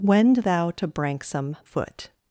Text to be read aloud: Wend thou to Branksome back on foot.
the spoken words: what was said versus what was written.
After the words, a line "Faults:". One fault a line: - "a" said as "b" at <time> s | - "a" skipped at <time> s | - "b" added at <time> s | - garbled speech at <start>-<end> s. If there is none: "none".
Wend thou to Branksome foot.
Faults:
- "back on" skipped at 1.6 s